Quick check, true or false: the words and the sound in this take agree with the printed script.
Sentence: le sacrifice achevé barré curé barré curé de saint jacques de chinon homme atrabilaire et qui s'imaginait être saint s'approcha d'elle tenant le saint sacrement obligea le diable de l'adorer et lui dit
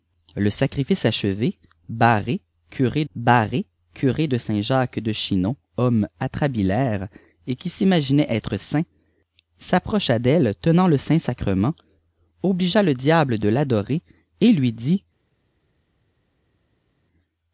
true